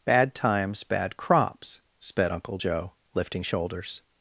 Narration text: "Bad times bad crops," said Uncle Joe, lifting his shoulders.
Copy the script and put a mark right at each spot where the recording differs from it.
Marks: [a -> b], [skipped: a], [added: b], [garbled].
"Bad times bad crops," [said -> sped] Uncle Joe, lifting [skipped: his] shoulders.